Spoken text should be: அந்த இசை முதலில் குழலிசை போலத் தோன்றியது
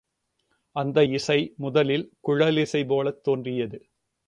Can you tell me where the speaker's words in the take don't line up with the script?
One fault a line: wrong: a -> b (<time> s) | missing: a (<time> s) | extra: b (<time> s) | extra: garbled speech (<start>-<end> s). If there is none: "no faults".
no faults